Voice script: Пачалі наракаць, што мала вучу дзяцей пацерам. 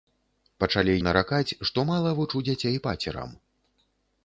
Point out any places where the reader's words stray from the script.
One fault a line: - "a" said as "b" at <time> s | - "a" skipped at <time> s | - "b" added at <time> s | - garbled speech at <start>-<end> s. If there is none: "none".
none